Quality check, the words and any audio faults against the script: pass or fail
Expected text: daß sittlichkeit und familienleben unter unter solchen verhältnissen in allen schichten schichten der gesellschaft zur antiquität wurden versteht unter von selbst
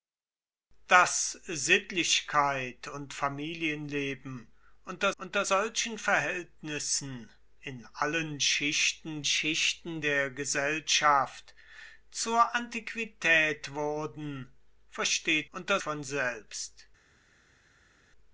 pass